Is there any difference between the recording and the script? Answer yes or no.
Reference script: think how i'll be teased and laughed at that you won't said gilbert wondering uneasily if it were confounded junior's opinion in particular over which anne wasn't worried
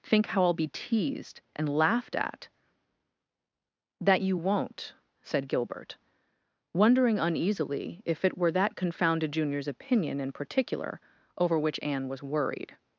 yes